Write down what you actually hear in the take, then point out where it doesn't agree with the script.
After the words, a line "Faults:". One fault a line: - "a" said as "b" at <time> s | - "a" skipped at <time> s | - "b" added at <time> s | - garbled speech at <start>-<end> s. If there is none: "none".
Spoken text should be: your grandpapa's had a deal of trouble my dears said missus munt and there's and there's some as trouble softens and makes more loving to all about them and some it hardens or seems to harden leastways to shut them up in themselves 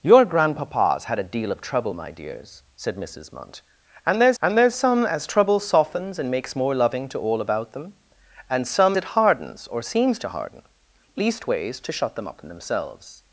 your grandpapa's had a deal of trouble my dears said missus munt and there's and there's some as trouble softens and makes more loving to all about them and some it hardens or seems to harden leastways to shut them up in themselves
Faults:
none